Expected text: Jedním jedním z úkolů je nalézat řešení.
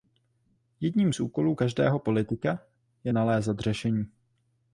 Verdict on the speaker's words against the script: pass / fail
fail